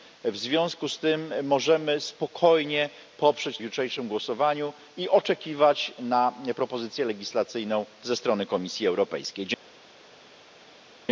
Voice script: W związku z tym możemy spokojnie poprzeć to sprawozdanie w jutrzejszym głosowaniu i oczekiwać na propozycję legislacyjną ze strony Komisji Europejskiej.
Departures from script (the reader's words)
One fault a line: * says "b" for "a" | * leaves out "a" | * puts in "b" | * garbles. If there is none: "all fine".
* leaves out "to sprawozdanie w"